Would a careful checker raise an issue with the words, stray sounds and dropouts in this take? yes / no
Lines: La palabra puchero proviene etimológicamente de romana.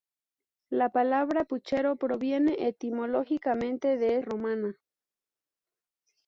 no